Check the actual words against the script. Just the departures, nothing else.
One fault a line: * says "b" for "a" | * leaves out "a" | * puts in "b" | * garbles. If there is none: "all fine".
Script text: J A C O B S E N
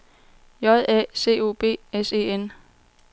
all fine